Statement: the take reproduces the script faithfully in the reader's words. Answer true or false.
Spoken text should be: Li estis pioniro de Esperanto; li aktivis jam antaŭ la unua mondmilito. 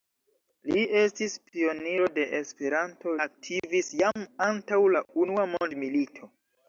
false